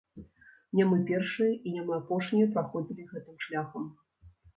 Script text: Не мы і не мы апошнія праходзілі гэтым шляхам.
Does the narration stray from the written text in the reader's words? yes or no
yes